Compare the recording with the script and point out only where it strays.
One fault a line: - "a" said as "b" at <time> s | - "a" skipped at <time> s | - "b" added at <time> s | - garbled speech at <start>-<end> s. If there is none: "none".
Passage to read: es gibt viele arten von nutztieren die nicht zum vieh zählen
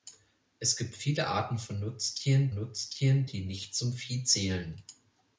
- "nutztieren" added at 2.5 s